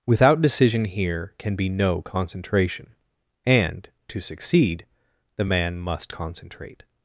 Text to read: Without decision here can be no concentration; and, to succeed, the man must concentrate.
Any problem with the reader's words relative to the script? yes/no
no